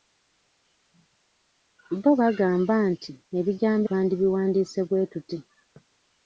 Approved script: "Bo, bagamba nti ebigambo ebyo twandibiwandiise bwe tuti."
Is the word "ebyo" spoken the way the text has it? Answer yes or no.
no